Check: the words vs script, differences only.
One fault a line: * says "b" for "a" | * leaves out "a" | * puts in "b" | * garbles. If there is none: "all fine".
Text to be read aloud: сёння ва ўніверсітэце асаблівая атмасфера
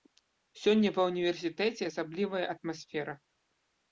all fine